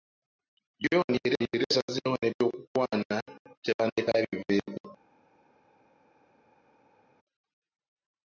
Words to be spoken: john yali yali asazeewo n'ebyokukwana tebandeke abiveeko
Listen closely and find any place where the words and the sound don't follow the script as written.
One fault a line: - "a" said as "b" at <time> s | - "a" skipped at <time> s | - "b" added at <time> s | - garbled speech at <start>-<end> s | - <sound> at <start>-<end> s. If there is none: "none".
none